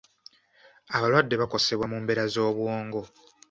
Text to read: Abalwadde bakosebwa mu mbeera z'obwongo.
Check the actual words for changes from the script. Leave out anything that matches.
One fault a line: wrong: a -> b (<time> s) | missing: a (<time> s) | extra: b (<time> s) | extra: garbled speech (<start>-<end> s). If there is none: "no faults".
no faults